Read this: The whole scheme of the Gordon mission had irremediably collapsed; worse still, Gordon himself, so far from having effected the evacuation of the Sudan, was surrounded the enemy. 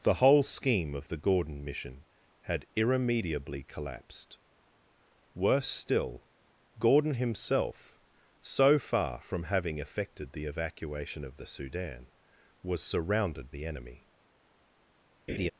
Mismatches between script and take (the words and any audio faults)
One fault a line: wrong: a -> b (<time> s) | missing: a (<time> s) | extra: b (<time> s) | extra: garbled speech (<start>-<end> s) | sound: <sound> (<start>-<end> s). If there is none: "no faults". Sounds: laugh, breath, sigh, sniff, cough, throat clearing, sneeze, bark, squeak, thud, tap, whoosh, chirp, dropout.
sound: laugh (15.3-15.5 s)